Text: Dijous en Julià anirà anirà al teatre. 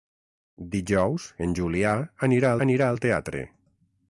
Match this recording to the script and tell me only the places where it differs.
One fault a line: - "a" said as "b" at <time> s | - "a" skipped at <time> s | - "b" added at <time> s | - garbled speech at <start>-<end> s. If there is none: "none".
none